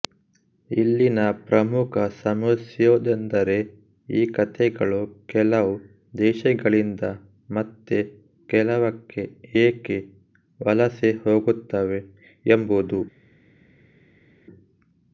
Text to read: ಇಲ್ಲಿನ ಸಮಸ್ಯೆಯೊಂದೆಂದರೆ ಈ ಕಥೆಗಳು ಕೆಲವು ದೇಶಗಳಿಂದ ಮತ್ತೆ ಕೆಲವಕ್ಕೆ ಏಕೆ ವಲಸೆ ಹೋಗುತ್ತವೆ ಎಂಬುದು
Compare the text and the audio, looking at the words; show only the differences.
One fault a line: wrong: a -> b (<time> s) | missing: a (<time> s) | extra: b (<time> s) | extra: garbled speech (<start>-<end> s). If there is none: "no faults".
extra: ಪ್ರಮುಖ (1.4 s)